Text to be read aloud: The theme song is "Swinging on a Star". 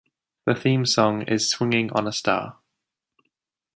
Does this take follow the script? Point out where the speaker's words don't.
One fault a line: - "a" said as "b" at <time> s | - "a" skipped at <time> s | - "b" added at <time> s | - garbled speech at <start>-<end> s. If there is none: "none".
none